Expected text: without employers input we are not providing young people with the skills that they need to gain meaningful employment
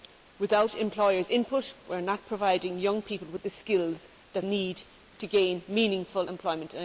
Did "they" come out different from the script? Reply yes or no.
yes